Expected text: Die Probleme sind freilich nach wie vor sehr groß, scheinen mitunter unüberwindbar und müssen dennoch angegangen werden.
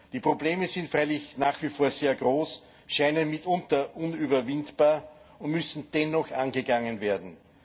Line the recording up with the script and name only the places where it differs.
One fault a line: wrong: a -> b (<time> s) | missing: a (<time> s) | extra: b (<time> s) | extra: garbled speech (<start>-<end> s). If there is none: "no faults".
no faults